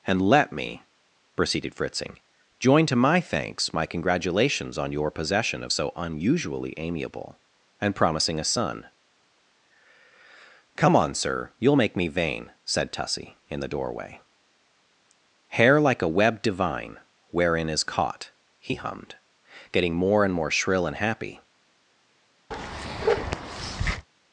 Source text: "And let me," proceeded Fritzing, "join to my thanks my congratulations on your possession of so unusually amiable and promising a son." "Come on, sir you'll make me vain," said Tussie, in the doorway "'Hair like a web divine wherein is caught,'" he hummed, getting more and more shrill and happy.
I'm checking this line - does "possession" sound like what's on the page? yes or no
yes